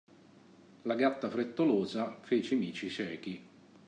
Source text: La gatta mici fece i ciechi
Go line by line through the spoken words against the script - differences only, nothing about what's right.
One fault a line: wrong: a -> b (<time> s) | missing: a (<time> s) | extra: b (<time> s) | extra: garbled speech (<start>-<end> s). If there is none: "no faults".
wrong: mici -> frettolosa (1.3 s)
extra: mici (2.6 s)